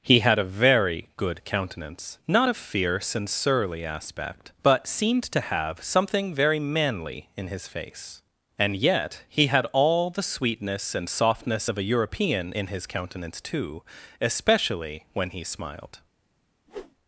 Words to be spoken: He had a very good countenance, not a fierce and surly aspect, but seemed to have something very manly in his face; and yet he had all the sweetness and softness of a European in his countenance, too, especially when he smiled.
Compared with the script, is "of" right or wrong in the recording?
right